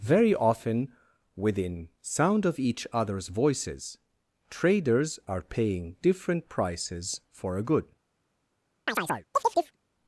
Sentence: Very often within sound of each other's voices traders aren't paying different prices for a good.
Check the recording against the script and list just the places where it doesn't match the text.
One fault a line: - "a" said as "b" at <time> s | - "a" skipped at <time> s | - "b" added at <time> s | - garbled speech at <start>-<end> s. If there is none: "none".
- "aren't" said as "are" at 5.3 s